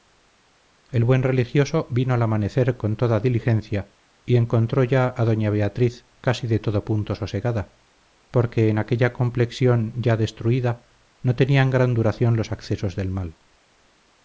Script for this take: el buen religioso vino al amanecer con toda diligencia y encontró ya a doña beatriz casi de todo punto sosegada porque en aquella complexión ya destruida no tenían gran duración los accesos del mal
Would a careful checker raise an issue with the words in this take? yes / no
no